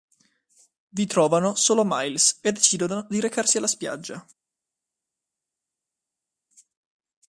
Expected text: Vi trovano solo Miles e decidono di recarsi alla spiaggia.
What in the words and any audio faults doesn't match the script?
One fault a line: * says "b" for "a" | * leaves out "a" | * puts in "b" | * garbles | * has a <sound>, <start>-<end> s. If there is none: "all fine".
all fine